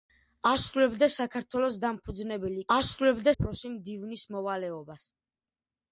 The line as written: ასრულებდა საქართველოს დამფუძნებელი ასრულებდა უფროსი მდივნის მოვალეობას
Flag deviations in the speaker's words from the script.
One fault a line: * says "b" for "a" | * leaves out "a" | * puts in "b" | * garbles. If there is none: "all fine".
all fine